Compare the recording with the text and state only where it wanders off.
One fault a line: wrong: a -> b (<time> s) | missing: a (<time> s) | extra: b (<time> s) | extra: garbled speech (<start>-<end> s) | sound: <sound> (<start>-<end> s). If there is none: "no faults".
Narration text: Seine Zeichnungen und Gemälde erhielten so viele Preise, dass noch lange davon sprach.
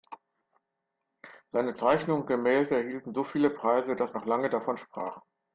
no faults